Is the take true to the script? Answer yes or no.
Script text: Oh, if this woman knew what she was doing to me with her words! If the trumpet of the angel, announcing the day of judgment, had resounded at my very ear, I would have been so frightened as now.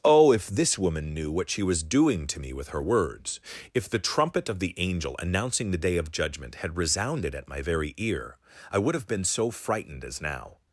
yes